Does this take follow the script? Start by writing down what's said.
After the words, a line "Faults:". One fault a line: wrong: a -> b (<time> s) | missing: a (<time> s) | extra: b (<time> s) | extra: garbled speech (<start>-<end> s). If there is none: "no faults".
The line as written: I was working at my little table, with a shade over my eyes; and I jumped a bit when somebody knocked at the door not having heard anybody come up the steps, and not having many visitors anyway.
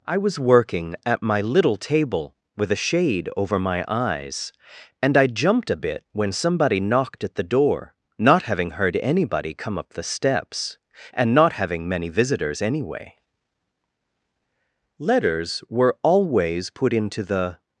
I was working at my little table, with a shade over my eyes; and I jumped a bit when somebody knocked at the door not having heard anybody come up the steps, and not having many visitors anyway. (Letters were always put into the
Faults:
extra: Letters were always put into the (15.0 s)